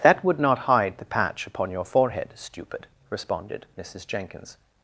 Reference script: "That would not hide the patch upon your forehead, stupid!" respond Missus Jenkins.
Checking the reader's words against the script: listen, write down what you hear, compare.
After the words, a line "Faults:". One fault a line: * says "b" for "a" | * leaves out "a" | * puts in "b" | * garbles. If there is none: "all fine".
"That would not hide the patch upon your forehead, stupid!" responded Missus Jenkins.
Faults:
* says "responded" for "respond"